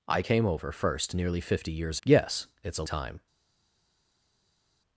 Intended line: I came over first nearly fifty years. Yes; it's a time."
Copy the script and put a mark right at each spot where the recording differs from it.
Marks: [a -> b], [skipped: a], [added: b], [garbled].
I came over first nearly fifty years. Yes; it's a time."